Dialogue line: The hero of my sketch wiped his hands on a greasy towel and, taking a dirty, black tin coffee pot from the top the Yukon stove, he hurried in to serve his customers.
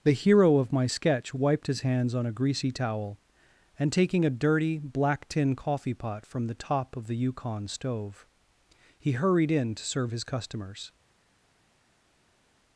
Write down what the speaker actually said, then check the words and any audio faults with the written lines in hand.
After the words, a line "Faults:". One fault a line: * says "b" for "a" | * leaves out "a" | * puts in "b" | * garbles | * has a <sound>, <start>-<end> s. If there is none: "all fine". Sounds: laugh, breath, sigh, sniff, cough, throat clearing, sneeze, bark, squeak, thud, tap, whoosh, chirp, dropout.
The hero of my sketch wiped his hands on a greasy towel and, taking a dirty, black tin coffee pot from the top of the Yukon stove, he hurried in to serve his customers.
Faults:
* puts in "of"